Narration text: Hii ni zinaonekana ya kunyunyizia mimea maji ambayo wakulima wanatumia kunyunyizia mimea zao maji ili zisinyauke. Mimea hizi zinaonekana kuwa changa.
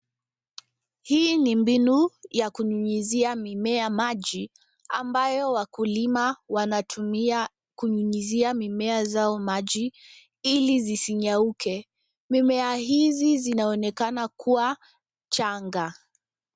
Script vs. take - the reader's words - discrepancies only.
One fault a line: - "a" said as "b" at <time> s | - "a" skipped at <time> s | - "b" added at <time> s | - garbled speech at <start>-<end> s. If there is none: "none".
- "zinaonekana" said as "mbinu" at 1.6 s